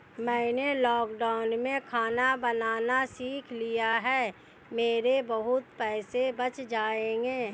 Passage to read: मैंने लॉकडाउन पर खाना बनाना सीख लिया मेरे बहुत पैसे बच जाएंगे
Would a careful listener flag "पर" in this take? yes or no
yes